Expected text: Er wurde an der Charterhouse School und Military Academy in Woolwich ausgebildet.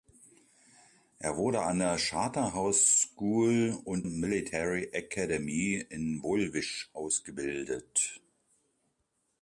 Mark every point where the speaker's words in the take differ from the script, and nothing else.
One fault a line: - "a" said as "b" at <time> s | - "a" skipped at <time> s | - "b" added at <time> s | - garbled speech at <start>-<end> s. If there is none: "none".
none